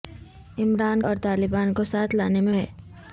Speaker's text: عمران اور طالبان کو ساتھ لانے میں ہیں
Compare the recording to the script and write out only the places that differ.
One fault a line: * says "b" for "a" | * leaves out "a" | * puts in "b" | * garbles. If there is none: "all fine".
all fine